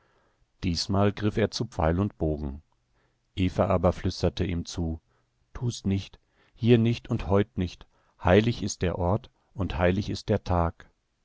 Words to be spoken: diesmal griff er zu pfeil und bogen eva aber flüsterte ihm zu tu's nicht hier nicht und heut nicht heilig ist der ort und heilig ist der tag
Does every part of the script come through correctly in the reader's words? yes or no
yes